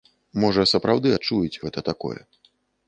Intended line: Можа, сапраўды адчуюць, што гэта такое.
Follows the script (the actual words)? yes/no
no